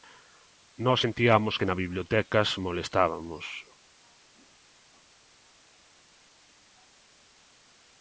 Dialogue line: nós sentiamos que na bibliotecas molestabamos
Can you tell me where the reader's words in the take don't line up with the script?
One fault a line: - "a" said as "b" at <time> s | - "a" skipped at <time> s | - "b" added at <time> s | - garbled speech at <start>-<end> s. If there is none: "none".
none